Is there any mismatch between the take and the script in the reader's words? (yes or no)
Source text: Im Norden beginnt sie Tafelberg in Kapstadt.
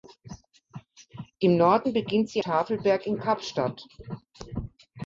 no